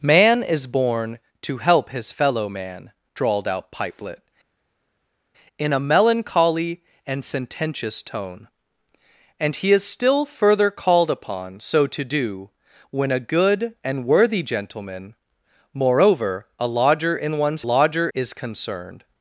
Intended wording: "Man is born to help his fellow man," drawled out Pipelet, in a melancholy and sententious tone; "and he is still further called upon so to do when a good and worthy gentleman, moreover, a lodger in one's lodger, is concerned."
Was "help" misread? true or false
false